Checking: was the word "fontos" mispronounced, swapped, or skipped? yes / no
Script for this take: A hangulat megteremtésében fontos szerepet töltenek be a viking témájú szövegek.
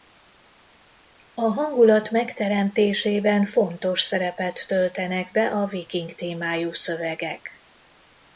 no